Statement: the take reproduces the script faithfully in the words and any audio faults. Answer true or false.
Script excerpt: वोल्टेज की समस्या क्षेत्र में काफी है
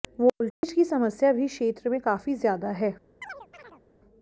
false